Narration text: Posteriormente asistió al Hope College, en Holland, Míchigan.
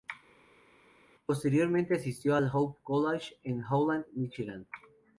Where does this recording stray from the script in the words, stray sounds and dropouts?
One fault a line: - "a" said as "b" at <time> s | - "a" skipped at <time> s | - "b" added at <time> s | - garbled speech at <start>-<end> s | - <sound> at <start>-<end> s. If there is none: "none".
none